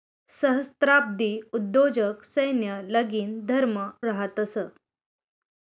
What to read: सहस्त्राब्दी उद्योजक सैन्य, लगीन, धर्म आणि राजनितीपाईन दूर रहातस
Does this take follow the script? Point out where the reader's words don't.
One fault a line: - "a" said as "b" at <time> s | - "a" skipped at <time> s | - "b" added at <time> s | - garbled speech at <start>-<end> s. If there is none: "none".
- "आणि राजनितीपाईन दूर" skipped at 3.8 s